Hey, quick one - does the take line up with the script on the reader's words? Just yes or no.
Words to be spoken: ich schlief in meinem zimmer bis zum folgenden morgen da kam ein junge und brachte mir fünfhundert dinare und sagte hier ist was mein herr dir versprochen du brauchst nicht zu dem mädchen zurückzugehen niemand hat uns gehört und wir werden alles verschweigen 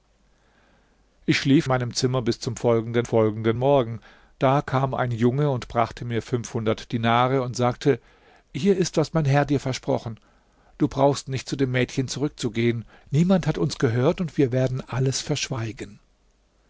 no